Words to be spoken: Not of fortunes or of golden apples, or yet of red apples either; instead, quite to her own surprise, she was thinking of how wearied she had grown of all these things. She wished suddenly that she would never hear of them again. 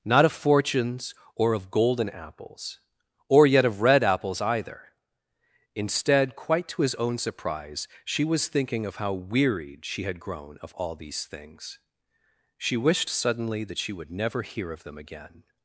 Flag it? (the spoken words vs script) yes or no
yes